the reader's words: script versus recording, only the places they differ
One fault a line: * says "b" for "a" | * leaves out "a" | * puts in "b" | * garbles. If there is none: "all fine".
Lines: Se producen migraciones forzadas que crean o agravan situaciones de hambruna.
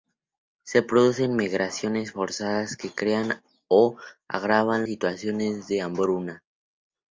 all fine